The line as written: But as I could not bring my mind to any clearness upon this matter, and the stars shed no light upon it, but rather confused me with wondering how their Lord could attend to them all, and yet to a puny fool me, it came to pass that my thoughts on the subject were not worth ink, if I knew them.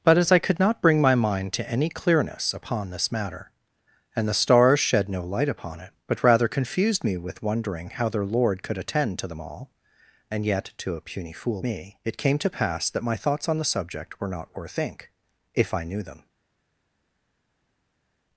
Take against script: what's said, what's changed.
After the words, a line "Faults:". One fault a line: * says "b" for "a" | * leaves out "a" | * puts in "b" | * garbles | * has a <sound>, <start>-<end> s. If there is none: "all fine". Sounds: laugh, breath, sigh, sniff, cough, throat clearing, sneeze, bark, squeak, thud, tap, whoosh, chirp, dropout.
But as I could not bring my mind to any clearness upon this matter, and the stars shed no light upon it, but rather confused me with wondering how their Lord could attend to them all, and yet to a puny fool me, it came to pass that my thoughts on the subject were not worth ink, if I knew them.
Faults:
all fine